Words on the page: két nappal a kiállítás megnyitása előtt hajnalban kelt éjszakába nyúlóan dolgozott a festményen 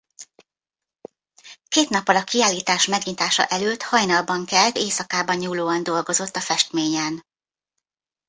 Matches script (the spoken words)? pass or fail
pass